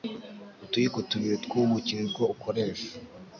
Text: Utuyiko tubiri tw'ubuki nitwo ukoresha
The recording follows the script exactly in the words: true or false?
true